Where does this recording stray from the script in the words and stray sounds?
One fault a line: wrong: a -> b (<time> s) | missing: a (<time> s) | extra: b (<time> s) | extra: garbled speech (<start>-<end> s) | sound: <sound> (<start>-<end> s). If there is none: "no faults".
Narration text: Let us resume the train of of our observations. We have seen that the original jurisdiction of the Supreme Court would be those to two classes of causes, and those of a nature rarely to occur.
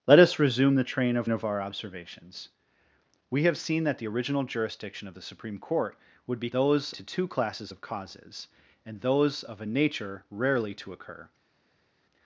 no faults